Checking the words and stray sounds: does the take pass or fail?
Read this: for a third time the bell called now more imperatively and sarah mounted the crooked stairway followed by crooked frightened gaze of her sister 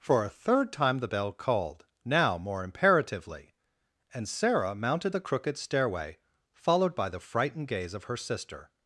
fail